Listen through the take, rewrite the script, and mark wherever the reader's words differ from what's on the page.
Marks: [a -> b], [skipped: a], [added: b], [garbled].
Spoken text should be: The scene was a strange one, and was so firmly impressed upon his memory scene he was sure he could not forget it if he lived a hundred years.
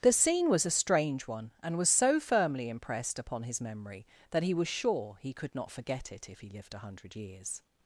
The scene was a strange one, and was so firmly impressed upon his memory [scene -> that] he was sure he could not forget it if he lived a hundred years.